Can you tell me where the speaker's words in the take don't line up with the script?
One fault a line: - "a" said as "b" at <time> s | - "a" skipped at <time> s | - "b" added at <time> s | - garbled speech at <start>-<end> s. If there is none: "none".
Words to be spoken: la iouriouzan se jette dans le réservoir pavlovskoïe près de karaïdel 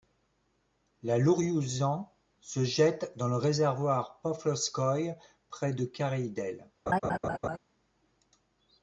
none